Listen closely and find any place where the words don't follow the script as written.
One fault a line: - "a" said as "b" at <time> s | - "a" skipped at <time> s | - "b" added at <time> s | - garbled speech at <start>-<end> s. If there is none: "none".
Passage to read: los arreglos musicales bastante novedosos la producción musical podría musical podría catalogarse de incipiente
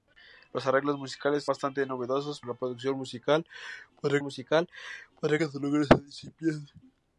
none